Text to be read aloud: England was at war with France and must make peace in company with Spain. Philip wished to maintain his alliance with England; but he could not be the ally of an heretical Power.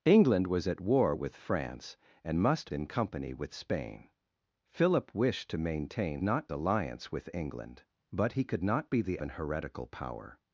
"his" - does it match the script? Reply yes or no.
no